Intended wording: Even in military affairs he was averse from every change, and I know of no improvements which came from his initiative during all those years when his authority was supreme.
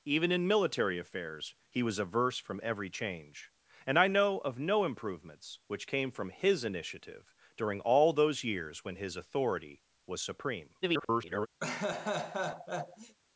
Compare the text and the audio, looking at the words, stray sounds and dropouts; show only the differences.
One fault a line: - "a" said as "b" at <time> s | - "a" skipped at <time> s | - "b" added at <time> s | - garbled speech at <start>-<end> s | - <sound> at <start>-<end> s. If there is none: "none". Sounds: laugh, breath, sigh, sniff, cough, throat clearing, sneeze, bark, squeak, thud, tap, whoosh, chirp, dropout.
- garbled speech at 10.8-11.5 s
- laugh at 11.6-13.2 s